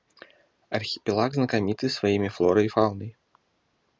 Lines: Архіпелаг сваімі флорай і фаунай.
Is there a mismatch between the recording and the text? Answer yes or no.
yes